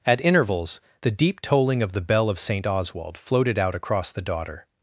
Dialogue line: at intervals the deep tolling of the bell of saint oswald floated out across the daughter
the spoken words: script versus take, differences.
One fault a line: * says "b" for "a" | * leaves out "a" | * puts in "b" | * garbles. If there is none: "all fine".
all fine